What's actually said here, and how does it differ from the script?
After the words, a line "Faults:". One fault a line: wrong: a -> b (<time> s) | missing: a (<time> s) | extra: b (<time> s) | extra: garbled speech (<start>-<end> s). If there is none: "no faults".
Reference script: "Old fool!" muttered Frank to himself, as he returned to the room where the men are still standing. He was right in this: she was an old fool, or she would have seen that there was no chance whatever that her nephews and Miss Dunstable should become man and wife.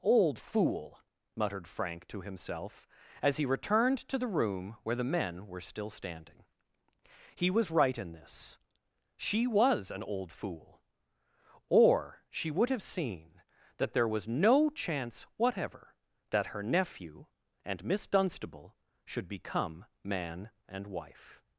"Old fool!" muttered Frank to himself, as he returned to the room where the men were still standing. He was right in this: she was an old fool, or she would have seen that there was no chance whatever that her nephew and Miss Dunstable should become man and wife.
Faults:
wrong: are -> were (5.5 s)
wrong: nephews -> nephew (16.6 s)